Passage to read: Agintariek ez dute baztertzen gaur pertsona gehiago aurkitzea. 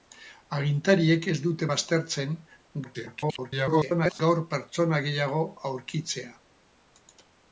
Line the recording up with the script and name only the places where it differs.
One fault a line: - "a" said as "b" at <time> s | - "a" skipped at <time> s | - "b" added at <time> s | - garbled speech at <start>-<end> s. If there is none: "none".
- garbled speech at 2.8-4.2 s